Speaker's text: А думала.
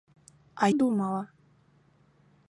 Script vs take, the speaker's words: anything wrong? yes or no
no